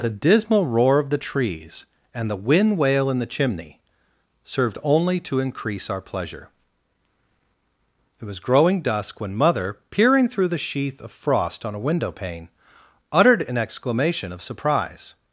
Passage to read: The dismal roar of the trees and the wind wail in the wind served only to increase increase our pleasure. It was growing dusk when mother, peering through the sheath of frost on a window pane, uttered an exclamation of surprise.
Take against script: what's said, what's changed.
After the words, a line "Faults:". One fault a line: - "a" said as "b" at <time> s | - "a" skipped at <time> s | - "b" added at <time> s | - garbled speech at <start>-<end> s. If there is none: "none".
The dismal roar of the trees and the wind wail in the chimney served only to increase our pleasure. It was growing dusk when mother, peering through the sheath of frost on a window pane, uttered an exclamation of surprise.
Faults:
- "wind" said as "chimney" at 3.3 s
- "increase" skipped at 5.9 s